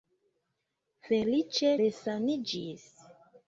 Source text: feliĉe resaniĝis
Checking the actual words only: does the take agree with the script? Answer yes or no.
yes